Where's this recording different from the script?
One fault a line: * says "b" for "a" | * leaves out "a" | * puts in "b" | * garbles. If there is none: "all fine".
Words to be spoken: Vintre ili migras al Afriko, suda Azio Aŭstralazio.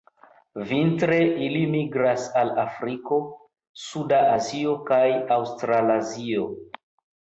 * puts in "kaj"